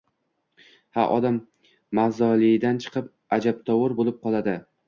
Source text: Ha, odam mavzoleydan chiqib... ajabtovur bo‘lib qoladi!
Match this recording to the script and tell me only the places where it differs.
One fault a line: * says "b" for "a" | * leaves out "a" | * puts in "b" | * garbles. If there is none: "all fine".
all fine